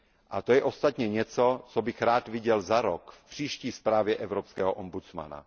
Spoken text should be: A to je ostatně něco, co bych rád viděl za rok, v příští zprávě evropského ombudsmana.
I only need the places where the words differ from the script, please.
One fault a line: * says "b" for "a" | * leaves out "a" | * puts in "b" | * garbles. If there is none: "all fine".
all fine